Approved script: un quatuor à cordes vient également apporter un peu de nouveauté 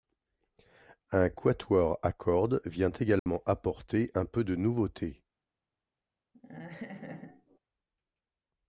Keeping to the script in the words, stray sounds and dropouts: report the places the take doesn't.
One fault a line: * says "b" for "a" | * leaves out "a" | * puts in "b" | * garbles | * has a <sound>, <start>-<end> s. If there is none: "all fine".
* has a dropout, 3.2-3.3 s
* has a laugh, 6.3-7.6 s